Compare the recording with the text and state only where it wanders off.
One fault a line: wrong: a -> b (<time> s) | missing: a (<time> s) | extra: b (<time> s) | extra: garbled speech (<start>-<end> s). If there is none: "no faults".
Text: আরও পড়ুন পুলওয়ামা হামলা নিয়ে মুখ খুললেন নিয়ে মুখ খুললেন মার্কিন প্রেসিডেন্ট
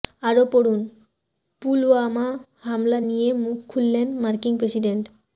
missing: নিয়ে মুখ খুললেন (4.1 s)